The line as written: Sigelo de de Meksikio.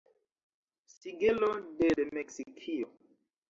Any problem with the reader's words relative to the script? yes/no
no